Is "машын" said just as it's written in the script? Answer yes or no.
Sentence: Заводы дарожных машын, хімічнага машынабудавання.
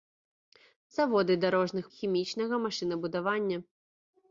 no